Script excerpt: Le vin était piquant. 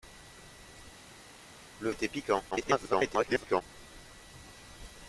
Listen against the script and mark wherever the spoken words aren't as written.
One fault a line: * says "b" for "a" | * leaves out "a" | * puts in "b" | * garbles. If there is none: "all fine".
* leaves out "vin"
* garbles